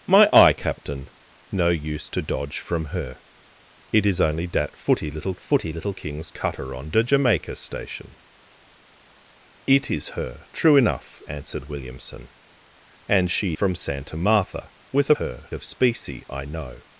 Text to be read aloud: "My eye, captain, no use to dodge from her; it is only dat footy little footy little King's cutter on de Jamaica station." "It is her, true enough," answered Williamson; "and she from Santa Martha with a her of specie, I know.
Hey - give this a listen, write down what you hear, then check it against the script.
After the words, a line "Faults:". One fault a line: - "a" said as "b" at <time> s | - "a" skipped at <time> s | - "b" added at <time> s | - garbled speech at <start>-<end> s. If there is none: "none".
"My eye, captain, no use to dodge from her; it is only dat footy little footy little King's cutter on de Jamaica station." "It is her, true enough," answered Williamson; "and she from Santa Martha with a her of specie, I know.
Faults:
none